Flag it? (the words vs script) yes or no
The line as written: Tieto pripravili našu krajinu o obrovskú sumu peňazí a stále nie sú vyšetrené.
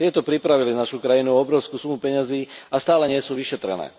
no